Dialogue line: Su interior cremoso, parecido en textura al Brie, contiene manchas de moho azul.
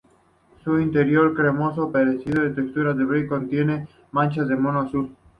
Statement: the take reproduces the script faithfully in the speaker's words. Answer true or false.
true